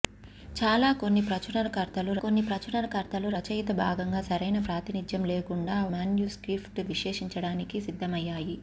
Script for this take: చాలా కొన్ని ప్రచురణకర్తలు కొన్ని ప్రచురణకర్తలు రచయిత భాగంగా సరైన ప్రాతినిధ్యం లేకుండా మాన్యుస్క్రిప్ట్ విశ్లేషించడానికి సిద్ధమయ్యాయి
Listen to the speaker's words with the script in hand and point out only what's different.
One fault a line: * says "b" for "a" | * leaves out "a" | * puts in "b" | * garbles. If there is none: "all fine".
all fine